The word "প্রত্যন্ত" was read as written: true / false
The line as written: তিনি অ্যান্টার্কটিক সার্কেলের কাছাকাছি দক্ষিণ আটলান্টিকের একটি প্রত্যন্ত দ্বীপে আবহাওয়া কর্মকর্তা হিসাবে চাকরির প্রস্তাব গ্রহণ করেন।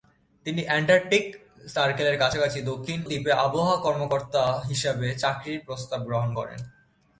false